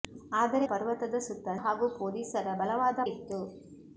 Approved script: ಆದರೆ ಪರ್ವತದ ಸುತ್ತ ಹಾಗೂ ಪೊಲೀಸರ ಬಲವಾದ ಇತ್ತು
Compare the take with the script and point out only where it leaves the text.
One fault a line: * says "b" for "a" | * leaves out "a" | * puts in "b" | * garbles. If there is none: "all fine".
all fine